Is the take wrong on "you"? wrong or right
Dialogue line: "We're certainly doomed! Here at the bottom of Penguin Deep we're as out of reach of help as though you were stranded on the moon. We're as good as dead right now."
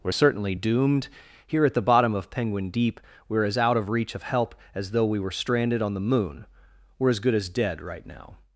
wrong